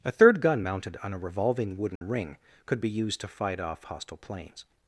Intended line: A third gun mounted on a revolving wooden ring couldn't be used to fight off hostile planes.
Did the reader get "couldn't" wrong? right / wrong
wrong